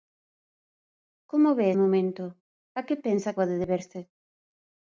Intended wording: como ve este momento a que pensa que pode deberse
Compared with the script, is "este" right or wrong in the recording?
wrong